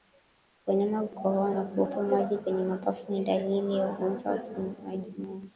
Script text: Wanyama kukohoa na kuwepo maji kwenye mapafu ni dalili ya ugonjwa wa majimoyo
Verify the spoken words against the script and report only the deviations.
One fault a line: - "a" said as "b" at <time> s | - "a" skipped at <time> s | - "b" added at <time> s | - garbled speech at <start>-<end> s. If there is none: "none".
none